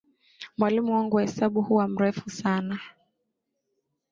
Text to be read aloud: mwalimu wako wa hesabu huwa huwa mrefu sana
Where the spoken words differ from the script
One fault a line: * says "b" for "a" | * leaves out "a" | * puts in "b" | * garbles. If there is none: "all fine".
* says "wangu" for "wako"
* leaves out "huwa"